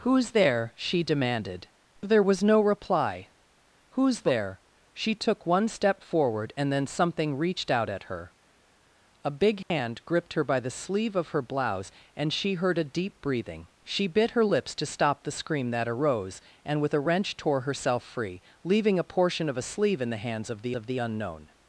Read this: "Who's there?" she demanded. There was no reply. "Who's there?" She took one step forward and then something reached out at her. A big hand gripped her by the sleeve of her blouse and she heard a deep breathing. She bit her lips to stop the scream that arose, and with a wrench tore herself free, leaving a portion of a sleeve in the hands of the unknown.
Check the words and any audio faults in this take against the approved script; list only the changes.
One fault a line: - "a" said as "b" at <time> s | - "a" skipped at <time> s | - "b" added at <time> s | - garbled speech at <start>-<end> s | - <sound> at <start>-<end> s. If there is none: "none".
- dropout at 9.6-9.7 s
- "of the" added at 20.7 s